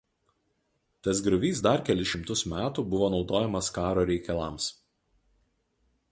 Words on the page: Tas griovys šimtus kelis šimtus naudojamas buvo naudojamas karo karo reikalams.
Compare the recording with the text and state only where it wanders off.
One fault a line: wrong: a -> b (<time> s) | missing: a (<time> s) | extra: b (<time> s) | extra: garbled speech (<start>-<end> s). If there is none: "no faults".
wrong: šimtus -> dar (1.7 s)
wrong: naudojamas -> metų (2.5 s)
missing: karo (4.1 s)